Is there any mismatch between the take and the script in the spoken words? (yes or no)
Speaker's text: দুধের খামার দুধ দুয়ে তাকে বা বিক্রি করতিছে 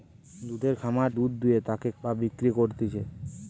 no